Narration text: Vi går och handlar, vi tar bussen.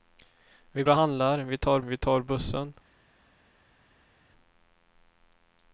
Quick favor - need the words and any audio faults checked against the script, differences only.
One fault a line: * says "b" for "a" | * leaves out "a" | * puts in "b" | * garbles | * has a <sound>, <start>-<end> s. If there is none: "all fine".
* leaves out "går"
* puts in "vi tar"